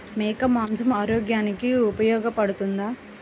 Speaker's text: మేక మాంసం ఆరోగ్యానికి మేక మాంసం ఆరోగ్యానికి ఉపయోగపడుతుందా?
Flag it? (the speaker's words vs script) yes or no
yes